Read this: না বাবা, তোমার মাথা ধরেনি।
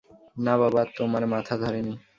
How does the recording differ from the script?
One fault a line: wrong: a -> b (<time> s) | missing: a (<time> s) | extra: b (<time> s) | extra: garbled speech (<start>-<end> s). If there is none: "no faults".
no faults